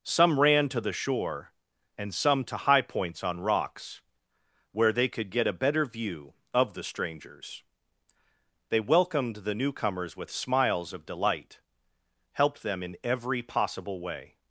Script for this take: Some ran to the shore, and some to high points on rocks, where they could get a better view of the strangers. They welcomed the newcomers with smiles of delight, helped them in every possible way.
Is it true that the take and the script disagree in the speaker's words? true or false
false